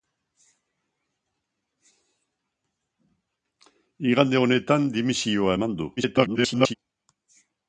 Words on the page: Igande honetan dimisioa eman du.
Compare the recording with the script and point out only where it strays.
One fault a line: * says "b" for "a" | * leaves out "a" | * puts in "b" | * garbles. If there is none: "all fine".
* garbles